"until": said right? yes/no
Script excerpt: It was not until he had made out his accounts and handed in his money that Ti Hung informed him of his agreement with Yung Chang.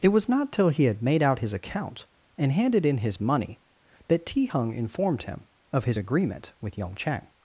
no